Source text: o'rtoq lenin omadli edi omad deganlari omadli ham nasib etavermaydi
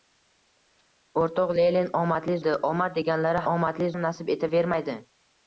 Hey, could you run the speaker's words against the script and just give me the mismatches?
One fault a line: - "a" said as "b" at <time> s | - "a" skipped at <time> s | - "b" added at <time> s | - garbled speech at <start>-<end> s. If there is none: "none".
none